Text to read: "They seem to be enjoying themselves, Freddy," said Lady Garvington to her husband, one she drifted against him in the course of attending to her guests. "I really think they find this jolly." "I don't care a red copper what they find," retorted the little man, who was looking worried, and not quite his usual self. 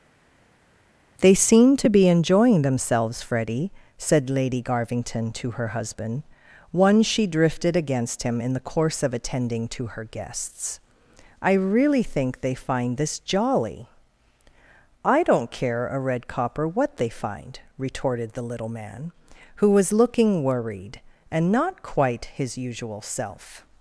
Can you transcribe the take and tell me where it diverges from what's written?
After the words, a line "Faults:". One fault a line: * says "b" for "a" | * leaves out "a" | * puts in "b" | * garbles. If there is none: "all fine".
"They seem to be enjoying themselves, Freddy," said Lady Garvington to her husband, one she drifted against him in the course of attending to her guests. "I really think they find this jolly." "I don't care a red copper what they find," retorted the little man, who was looking worried, and not quite his usual self.
Faults:
all fine